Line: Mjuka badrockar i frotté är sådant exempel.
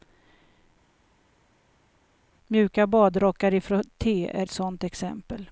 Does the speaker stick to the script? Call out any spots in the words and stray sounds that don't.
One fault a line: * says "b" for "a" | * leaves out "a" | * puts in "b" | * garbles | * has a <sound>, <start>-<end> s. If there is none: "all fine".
all fine